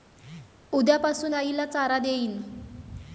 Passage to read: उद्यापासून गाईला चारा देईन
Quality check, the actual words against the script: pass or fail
pass